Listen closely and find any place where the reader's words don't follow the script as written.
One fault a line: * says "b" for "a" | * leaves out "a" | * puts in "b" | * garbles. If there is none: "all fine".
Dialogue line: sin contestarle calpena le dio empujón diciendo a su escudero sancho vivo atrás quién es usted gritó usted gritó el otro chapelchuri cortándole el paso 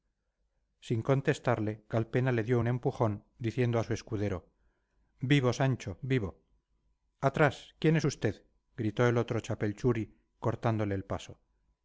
* puts in "un"
* puts in "vivo"
* leaves out "usted gritó"